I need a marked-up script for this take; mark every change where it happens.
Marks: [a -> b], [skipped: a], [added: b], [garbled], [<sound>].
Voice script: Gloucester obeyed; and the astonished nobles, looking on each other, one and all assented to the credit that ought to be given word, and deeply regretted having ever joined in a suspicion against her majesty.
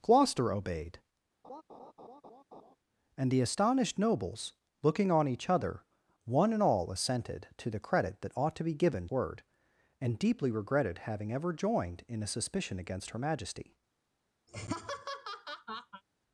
Gloucester obeyed; [laugh] and the astonished nobles, looking on each other, one and all assented to the credit that ought to be given word, and deeply regretted having ever joined in a suspicion against her majesty. [laugh]